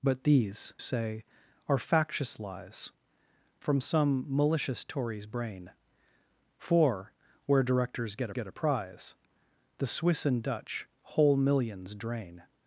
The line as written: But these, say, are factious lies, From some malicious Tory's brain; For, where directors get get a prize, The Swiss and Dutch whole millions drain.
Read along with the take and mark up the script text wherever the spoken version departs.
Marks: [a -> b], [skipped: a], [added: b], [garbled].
But these, say, are factious lies, From some malicious Tory's brain; For, where directors get get a prize, The Swiss and Dutch whole millions drain.